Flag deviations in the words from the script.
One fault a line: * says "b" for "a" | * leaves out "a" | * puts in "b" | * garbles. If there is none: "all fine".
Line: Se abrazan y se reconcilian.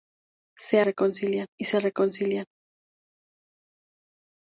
* says "reconcilian" for "abrazan"